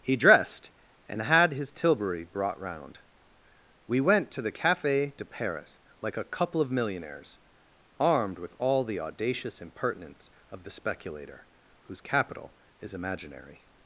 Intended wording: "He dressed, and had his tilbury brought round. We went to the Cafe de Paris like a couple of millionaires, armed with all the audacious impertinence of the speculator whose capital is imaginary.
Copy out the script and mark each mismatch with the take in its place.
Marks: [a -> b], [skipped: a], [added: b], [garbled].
"He dressed, and had his tilbury brought round. We went to the Cafe de Paris like a couple of millionaires, armed with all the audacious impertinence of the speculator whose capital is imaginary.